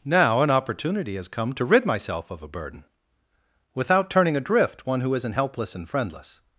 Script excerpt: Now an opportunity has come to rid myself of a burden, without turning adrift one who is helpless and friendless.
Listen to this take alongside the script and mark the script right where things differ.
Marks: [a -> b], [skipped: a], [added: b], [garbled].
Now an opportunity has come to rid myself of a burden, without turning adrift one who [is -> isn't] helpless and friendless.